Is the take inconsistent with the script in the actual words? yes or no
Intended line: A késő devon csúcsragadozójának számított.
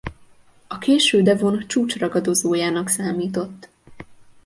no